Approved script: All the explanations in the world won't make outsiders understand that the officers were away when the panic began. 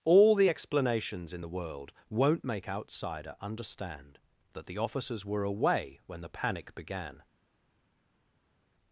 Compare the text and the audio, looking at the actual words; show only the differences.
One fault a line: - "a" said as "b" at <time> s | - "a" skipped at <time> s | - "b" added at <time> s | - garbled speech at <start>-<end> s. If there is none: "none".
- "outsiders" said as "outsider" at 2.7 s